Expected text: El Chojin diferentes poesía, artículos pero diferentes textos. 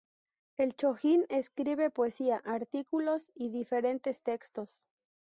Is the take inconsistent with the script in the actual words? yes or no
yes